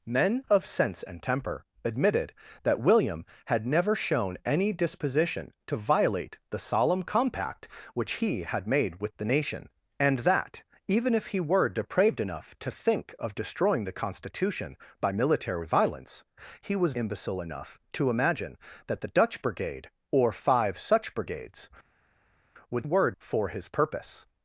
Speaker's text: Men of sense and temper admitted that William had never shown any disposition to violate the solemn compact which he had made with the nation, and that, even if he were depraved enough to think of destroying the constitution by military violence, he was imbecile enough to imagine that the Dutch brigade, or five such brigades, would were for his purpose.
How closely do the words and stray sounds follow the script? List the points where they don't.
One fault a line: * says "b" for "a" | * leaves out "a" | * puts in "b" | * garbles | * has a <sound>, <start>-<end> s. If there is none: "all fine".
all fine